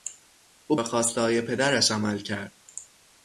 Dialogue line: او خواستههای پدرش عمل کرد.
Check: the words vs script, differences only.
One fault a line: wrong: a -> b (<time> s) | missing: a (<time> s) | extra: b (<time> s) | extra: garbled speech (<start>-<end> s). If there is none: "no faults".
no faults